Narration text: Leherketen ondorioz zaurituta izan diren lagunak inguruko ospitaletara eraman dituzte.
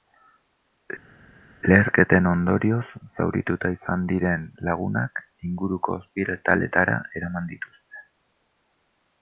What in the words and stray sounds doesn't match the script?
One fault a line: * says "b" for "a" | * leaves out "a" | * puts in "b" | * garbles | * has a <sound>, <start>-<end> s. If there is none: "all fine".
all fine